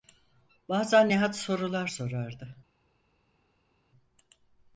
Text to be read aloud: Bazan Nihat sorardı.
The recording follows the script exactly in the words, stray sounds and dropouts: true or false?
false